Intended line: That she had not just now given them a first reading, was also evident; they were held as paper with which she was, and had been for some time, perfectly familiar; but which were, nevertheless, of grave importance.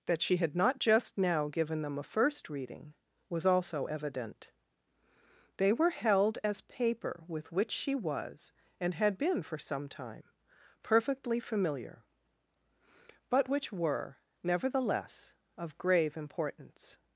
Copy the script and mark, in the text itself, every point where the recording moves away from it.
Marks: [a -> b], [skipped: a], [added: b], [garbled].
That she had not just now given them a first reading, was also evident; they were held as paper with which she was, and had been for some time, perfectly familiar; but which were, nevertheless, of grave importance.